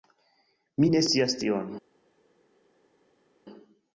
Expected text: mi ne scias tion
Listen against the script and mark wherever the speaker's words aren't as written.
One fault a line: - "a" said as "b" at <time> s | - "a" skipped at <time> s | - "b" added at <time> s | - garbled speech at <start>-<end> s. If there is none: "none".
none